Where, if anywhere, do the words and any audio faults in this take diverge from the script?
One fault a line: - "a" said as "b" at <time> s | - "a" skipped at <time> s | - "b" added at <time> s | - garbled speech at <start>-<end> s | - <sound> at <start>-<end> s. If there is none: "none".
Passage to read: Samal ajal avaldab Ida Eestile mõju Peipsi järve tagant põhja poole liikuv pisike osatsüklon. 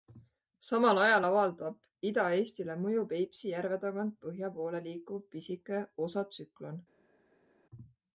none